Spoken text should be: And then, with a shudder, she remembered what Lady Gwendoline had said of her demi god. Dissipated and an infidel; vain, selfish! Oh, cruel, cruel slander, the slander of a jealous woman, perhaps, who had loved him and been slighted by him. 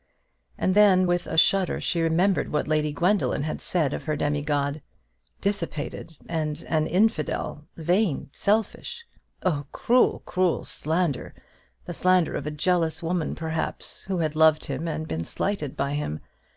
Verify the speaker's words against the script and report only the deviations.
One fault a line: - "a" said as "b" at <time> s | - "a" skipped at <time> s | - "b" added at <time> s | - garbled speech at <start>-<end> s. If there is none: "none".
none